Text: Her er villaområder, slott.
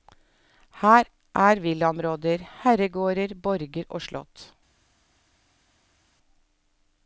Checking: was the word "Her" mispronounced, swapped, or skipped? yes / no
no